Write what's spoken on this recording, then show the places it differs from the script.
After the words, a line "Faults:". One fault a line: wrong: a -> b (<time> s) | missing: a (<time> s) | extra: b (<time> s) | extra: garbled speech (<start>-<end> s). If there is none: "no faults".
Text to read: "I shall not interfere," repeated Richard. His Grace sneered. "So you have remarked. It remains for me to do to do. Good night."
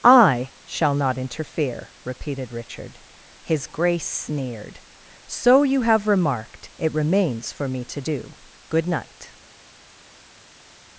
"I shall not interfere," repeated Richard. His Grace sneered. "So you have remarked. It remains for me to do. Good night."
Faults:
missing: to do (8.4 s)